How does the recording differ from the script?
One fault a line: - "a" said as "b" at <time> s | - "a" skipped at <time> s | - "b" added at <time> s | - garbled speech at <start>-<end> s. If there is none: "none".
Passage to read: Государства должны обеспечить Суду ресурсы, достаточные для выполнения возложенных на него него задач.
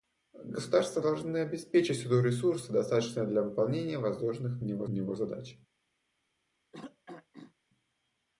none